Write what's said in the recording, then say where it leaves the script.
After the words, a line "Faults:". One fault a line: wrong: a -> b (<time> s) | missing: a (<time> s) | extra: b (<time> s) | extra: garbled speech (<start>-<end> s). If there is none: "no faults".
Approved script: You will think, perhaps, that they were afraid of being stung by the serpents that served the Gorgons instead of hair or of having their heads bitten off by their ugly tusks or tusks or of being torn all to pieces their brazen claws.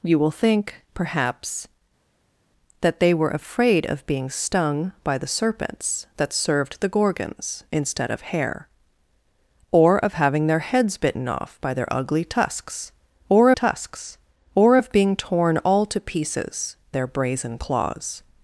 You will think, perhaps, that they were afraid of being stung by the serpents that served the Gorgons instead of hair or of having their heads bitten off by their ugly tusks or tusks or of being torn all to pieces their brazen claws.
Faults:
no faults